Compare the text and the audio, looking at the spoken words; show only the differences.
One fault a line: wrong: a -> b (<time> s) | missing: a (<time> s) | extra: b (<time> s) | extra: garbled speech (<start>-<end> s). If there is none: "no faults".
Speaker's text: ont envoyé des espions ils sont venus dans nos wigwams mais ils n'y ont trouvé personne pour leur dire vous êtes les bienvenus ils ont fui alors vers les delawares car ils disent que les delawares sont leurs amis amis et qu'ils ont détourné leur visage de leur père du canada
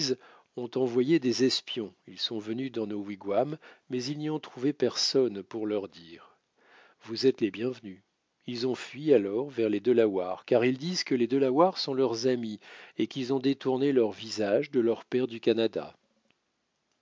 missing: amis (12.6 s)